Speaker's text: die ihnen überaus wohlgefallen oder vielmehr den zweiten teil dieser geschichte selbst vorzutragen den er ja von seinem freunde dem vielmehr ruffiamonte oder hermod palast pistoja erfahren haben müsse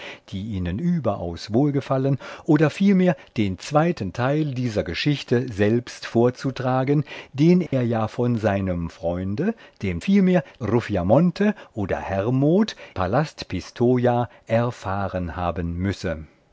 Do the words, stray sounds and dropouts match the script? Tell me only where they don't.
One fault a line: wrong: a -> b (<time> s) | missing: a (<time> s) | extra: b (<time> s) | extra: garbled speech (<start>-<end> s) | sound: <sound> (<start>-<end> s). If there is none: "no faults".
sound: dropout (7.7-7.7 s)